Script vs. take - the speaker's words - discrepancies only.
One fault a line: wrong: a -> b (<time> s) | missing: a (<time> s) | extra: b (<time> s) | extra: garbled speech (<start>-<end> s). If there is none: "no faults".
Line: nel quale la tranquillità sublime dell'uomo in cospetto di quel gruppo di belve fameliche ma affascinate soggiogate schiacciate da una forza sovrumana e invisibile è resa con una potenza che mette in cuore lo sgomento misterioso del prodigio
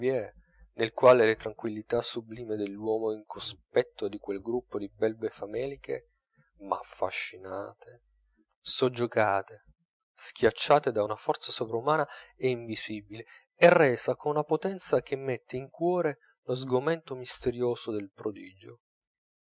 no faults